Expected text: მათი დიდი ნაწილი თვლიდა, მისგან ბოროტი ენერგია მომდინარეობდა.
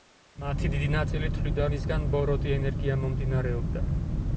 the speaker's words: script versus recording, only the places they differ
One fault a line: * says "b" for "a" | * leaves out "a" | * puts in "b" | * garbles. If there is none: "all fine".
all fine